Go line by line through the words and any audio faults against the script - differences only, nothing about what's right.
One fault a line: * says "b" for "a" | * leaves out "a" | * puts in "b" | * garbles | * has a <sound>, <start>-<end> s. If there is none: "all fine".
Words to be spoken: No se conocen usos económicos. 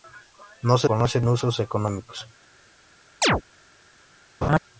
* has a chirp, 3.2-3.4 s
* has a laugh, 4.4-4.6 s